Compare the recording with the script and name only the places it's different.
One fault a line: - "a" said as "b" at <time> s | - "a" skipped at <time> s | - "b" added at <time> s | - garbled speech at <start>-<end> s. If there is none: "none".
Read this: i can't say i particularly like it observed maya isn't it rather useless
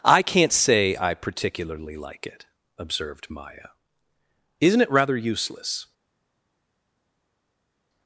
none